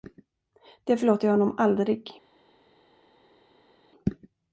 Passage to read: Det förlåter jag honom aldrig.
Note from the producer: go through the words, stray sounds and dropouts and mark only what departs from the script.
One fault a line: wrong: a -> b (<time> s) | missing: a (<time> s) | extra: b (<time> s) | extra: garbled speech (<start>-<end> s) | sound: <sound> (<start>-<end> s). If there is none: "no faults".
no faults